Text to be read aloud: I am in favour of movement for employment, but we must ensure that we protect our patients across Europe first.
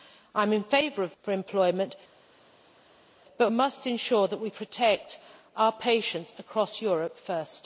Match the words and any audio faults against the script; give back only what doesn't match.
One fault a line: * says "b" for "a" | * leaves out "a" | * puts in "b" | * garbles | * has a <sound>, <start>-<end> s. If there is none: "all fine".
* leaves out "movement"
* leaves out "we"